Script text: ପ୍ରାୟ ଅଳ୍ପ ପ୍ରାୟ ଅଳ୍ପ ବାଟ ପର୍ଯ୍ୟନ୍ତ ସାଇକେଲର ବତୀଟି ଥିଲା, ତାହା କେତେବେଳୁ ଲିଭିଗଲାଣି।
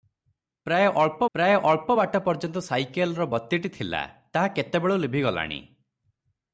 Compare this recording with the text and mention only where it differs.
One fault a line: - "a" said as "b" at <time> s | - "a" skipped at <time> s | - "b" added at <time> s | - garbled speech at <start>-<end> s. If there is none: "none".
none